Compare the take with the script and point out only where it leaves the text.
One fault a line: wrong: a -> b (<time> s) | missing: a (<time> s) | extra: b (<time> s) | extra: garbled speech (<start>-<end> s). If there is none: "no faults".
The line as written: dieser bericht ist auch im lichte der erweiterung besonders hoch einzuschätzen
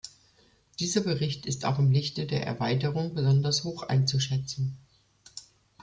no faults